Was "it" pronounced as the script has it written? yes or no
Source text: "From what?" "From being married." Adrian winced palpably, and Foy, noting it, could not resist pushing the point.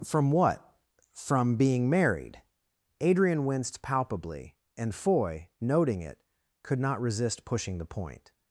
yes